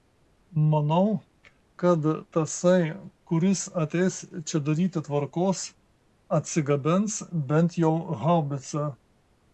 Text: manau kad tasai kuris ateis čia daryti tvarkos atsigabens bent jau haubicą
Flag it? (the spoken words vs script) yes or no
no